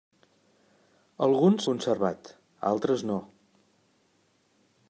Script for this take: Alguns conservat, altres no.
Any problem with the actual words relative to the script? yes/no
no